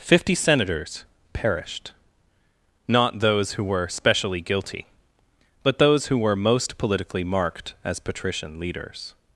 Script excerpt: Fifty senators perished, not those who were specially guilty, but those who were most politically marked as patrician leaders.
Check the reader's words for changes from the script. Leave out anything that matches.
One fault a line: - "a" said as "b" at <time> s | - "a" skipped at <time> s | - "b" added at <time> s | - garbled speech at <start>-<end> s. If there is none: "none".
none